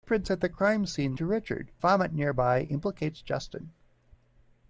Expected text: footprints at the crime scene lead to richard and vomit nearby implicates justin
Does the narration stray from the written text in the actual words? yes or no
yes